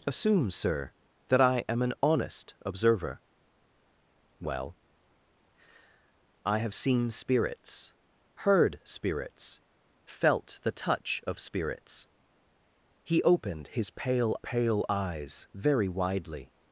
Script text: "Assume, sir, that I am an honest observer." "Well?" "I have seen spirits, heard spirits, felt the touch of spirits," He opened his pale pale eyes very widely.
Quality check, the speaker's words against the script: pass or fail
pass